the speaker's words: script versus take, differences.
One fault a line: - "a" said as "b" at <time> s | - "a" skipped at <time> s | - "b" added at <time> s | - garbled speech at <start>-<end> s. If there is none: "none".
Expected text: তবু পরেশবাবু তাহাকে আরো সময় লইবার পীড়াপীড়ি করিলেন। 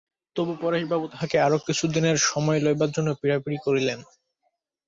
- "কিছুদিনের" added at 1.7 s
- "জন্য" added at 3.0 s